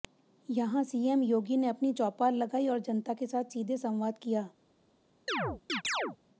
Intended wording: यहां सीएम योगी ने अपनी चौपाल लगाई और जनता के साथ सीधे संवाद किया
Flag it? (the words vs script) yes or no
no